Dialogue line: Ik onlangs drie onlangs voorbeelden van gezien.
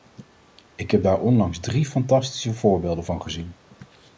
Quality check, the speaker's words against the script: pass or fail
fail